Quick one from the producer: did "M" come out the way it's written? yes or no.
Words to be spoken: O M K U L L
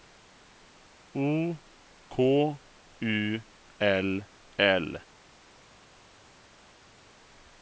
no